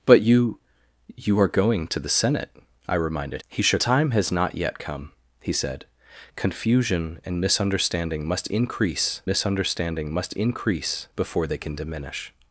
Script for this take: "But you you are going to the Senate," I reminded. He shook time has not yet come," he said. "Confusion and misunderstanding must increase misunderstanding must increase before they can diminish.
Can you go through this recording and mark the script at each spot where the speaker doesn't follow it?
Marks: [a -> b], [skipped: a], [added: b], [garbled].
"But you you are going to the Senate," I reminded. He shook time has not yet come," he said. "Confusion and misunderstanding must increase misunderstanding must increase before they can diminish.